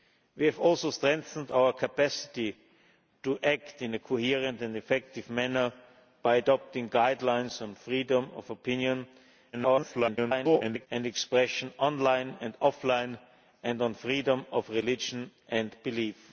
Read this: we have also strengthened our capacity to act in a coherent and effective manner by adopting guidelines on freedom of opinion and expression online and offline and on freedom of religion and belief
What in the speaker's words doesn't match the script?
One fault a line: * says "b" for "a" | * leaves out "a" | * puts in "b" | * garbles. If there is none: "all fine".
* garbles